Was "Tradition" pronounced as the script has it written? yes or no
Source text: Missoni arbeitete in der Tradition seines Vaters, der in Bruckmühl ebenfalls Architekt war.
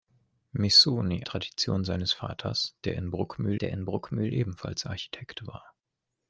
no